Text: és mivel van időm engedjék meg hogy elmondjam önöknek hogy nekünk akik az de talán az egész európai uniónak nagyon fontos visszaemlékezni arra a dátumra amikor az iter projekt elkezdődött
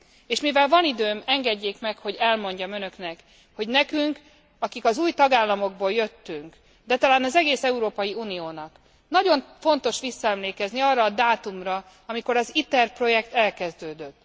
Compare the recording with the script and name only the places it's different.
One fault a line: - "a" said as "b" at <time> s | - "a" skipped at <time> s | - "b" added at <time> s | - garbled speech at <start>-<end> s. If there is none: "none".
- "új tagállamokból jöttünk" added at 5.0 s